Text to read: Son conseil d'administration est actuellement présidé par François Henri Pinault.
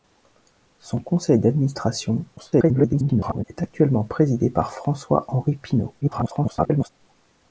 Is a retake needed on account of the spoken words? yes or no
yes